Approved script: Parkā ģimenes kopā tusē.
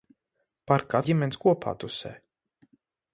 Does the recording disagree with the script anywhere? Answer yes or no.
no